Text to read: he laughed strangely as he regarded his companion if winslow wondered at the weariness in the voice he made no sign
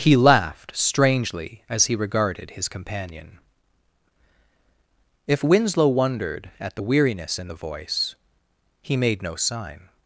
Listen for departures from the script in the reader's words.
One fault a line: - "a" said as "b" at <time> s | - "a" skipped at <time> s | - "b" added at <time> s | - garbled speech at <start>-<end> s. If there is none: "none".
none